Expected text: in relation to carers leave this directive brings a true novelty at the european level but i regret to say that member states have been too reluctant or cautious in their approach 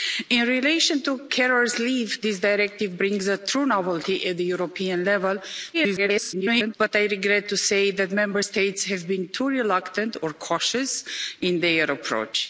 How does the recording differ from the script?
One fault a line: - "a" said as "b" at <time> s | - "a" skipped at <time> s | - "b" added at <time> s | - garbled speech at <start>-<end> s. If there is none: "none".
- garbled speech at 5.7-6.8 s